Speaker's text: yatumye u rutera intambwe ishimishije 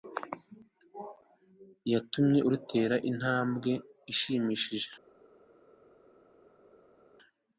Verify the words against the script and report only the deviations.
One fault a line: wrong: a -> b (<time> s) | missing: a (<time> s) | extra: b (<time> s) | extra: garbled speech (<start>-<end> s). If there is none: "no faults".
no faults